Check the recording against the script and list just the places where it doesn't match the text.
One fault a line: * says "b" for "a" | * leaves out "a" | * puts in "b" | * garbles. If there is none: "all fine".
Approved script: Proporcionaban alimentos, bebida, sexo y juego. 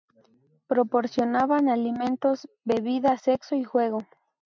all fine